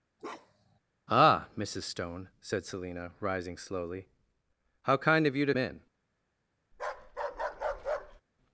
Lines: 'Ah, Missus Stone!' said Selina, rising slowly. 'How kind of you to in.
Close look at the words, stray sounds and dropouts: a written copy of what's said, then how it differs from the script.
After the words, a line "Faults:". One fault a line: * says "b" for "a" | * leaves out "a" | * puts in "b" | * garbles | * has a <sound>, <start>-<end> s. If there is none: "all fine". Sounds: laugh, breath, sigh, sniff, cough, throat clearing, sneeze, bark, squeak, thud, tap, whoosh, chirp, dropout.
'Ah, Missus Stone!' said Selina, rising slowly. 'How kind of you to in.
Faults:
* has a bark, 0.2-0.8 s
* has a bark, 6.7-8.2 s